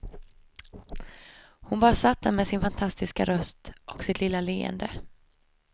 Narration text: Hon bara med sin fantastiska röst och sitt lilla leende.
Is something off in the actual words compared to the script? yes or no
yes